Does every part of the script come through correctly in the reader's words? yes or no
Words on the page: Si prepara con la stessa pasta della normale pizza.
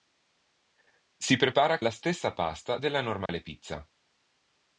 no